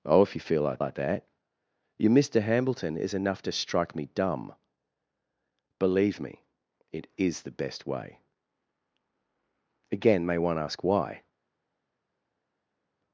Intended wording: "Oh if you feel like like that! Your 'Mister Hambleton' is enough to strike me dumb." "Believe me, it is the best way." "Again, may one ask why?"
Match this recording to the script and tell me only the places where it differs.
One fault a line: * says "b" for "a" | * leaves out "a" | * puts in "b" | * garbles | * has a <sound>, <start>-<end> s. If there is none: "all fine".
all fine